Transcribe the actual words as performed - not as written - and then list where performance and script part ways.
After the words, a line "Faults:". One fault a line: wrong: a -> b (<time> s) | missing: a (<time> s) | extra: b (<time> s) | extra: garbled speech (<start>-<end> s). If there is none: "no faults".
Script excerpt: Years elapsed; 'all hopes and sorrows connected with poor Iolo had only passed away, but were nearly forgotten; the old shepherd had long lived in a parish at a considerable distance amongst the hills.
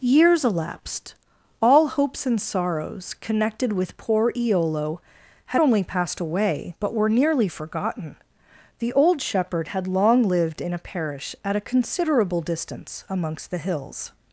Years elapsed; 'all hopes and sorrows connected with poor Iolo had only passed away, but were nearly forgotten; the old shepherd had long lived in a parish at a considerable distance amongst the hills.
Faults:
no faults